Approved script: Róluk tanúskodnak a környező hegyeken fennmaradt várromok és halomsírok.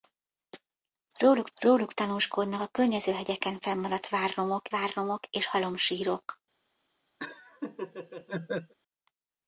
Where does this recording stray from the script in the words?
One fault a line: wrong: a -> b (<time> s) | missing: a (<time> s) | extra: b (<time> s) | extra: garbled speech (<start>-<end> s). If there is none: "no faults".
extra: róluk (1.6 s)
extra: várromok (4.7 s)